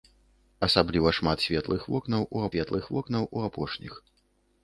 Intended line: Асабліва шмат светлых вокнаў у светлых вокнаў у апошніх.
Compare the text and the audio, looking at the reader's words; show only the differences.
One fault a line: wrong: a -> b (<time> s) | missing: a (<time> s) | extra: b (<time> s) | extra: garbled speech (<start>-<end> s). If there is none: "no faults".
no faults